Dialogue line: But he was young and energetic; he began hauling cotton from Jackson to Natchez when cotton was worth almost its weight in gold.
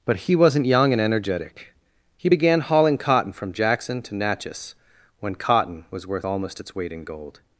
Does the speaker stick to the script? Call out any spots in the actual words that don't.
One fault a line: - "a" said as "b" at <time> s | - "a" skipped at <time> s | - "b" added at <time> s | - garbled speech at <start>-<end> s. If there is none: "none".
- "was" said as "wasn't" at 0.3 s